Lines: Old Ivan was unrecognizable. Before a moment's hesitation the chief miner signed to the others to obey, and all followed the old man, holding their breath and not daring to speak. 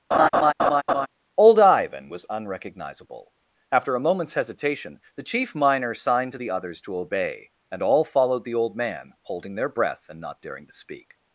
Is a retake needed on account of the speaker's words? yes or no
yes